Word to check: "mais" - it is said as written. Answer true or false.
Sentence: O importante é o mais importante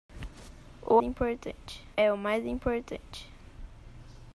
true